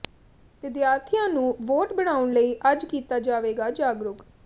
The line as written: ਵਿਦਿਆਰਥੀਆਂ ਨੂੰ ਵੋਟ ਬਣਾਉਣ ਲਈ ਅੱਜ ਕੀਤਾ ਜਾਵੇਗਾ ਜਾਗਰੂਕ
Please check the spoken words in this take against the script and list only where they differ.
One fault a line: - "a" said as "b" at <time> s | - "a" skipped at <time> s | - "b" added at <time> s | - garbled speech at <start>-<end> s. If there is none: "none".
none